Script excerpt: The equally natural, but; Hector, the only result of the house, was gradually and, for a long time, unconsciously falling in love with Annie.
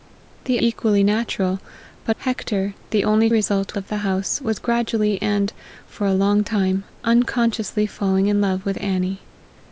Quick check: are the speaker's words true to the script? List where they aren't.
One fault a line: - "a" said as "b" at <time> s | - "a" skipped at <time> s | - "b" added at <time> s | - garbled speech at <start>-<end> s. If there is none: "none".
none